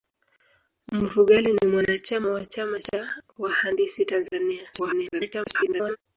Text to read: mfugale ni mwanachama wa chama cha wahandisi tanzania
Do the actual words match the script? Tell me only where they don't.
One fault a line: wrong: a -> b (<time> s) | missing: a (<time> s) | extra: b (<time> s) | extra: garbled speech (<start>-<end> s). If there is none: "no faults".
extra: garbled speech (4.7-6.0 s)